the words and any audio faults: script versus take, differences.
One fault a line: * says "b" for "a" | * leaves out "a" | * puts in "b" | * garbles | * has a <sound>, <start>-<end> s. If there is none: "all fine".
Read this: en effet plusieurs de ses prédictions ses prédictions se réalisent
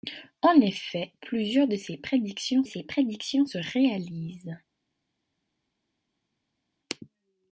all fine